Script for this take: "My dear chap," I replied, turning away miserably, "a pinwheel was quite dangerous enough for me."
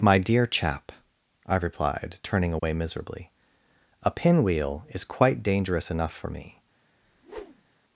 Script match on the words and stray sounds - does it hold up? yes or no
no